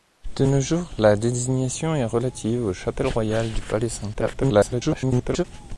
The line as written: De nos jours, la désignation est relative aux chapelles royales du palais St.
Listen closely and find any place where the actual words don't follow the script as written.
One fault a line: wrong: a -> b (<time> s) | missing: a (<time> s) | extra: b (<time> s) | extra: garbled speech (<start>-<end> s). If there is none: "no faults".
extra: garbled speech (4.1-5.4 s)